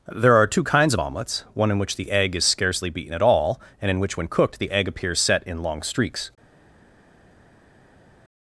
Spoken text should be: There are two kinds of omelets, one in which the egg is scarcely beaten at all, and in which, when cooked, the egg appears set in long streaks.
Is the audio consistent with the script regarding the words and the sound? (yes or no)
yes